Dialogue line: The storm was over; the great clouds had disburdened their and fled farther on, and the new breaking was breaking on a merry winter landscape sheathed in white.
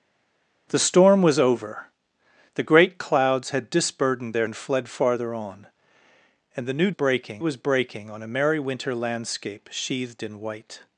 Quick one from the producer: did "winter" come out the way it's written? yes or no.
yes